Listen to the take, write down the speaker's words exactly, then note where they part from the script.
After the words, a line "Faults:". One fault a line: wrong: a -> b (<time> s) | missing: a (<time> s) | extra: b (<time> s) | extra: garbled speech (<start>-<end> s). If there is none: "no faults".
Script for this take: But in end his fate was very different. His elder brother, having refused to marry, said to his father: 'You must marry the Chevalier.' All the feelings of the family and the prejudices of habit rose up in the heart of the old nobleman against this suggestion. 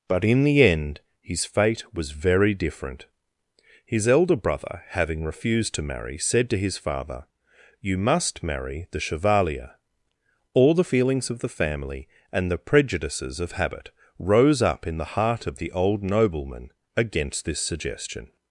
But in the end his fate was very different. His elder brother, having refused to marry, said to his father: 'You must marry the Chevalier.' All the feelings of the family and the prejudices of habit rose up in the heart of the old nobleman against this suggestion.
Faults:
extra: the (0.4 s)